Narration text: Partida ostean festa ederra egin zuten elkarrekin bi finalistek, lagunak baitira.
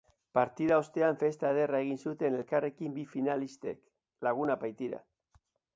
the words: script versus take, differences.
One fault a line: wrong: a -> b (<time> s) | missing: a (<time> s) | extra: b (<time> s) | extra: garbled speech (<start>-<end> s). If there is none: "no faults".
no faults